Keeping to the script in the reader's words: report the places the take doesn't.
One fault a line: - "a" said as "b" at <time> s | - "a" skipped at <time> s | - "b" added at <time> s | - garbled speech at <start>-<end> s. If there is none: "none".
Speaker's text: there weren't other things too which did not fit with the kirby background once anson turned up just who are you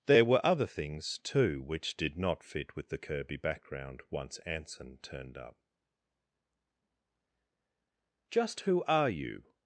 - "weren't" said as "were" at 0.2 s